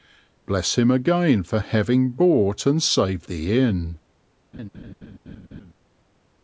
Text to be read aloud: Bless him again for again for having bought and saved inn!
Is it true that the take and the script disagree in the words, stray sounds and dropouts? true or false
true